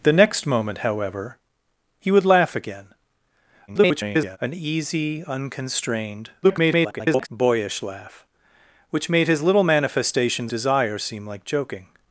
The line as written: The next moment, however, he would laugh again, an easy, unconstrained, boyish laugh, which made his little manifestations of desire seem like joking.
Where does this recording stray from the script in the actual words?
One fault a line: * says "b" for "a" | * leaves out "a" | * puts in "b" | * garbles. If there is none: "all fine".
* garbles
* garbles
* leaves out "of"